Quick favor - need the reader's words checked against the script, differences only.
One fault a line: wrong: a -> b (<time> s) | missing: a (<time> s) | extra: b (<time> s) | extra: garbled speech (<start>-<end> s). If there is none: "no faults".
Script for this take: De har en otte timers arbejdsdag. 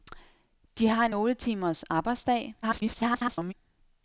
extra: garbled speech (2.6-3.5 s)